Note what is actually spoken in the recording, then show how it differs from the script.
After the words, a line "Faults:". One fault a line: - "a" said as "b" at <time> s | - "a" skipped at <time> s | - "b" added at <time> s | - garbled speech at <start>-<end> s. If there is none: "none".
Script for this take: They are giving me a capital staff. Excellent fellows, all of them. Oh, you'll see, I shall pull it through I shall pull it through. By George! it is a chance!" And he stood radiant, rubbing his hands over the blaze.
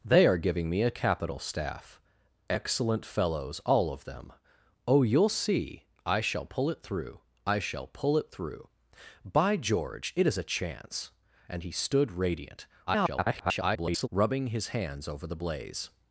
They are giving me a capital staff. Excellent fellows, all of them. Oh, you'll see, I shall pull it through I shall pull it through. By George! it is a chance!" And he stood radiant, [garbled] rubbing his hands over the blaze.
Faults:
- garbled speech at 12.9-14.1 s